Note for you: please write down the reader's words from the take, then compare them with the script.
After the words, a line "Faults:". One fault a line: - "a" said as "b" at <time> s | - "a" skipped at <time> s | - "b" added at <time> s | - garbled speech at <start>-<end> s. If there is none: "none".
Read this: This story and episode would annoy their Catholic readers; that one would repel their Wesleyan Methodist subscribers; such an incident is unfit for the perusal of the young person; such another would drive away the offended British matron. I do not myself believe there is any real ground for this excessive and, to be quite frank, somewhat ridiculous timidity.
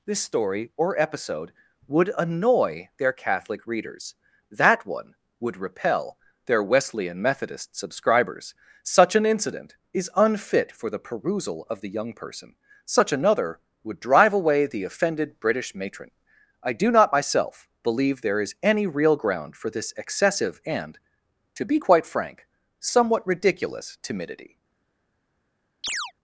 This story or episode would annoy their Catholic readers; that one would repel their Wesleyan Methodist subscribers; such an incident is unfit for the perusal of the young person; such another would drive away the offended British matron. I do not myself believe there is any real ground for this excessive and, to be quite frank, somewhat ridiculous timidity.
Faults:
- "and" said as "or" at 0.8 s